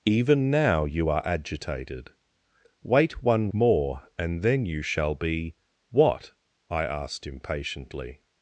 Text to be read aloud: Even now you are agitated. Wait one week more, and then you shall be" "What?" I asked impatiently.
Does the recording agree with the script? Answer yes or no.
no